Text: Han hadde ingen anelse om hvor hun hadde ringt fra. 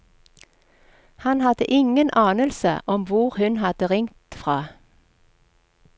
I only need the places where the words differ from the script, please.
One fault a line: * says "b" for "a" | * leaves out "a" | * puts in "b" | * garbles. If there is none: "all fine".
all fine